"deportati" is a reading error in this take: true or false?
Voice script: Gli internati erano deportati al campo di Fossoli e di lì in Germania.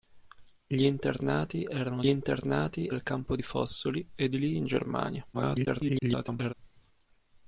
true